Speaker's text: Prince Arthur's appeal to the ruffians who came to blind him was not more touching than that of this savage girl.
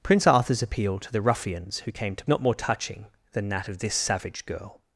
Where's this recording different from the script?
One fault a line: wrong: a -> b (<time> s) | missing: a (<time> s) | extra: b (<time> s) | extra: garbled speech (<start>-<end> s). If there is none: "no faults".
missing: blind him was (2.2 s)